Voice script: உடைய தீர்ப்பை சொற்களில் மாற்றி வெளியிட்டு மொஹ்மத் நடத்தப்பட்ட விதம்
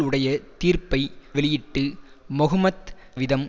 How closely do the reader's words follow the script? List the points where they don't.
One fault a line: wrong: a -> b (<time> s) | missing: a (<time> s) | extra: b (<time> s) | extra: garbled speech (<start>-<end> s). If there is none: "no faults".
missing: சொற்களில் மாற்றி (1.0 s)
missing: நடத்தப்பட்ட (2.9 s)